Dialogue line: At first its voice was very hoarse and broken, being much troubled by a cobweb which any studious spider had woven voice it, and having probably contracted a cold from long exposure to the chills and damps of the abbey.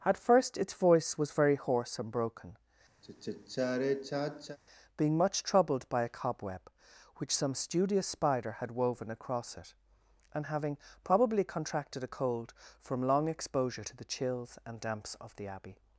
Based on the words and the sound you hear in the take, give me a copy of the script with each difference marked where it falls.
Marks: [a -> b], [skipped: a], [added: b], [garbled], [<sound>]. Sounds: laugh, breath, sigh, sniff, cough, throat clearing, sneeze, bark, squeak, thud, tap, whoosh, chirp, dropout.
At first its voice was very hoarse and broken, [sigh] being much troubled by a cobweb which [any -> some] studious spider had woven [voice -> across] it, and having probably contracted a cold from long exposure to the chills and damps of the abbey.